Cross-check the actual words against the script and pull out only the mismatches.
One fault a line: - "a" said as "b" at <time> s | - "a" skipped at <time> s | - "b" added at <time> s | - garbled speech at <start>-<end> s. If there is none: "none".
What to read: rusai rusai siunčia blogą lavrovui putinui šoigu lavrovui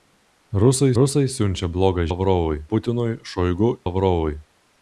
none